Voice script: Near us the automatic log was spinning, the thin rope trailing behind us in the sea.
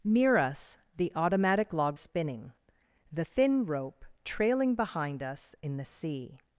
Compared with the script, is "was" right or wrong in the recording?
wrong